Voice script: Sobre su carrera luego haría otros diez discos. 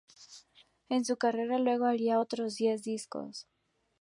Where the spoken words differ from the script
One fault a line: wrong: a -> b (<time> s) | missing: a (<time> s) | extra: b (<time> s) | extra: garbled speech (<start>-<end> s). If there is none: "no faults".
wrong: Sobre -> En (0.9 s)